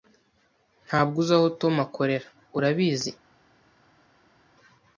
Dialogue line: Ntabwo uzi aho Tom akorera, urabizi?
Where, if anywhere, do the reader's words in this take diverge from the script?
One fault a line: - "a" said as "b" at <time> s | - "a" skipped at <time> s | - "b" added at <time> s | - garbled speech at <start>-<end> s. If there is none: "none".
none